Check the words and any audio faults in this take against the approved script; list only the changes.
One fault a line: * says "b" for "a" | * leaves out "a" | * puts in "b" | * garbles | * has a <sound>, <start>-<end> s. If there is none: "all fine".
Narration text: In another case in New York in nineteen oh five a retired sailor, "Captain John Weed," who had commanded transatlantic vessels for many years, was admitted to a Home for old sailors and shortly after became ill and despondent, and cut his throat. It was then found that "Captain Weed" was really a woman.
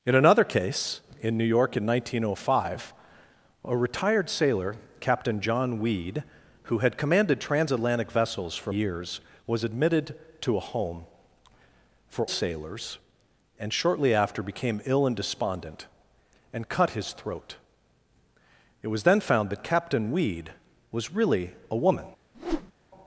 * leaves out "many"
* leaves out "old"
* has a whoosh, 22.3-22.7 s